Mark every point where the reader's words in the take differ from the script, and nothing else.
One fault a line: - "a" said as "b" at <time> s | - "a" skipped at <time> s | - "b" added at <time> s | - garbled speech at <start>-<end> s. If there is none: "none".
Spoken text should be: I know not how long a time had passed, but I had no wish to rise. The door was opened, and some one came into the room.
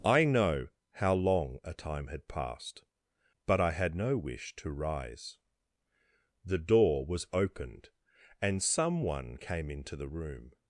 - "not" skipped at 0.7 s